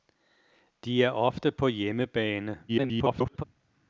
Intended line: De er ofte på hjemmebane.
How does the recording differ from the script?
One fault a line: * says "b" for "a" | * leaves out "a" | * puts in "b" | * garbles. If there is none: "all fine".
* garbles